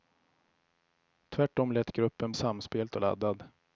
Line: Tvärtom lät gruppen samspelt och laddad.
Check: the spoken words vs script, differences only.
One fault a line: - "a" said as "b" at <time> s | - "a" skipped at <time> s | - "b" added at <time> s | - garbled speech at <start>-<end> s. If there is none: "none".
none